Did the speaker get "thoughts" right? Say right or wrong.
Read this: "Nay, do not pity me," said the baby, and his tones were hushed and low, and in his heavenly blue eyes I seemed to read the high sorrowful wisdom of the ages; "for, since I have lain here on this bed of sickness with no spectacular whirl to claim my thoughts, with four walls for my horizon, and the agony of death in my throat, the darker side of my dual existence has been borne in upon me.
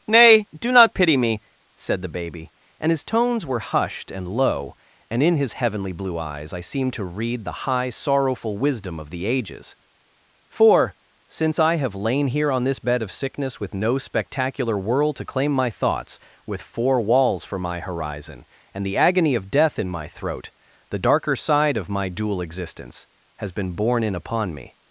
right